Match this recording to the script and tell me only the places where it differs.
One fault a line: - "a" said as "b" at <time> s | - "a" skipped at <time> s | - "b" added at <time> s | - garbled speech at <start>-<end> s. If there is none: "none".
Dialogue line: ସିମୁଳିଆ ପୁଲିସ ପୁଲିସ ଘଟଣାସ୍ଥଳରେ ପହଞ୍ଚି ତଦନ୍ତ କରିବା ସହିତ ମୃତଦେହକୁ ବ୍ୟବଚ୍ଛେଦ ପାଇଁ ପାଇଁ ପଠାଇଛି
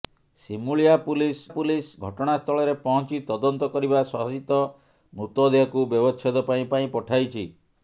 none